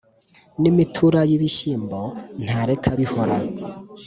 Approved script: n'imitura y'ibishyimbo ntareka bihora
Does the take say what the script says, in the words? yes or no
yes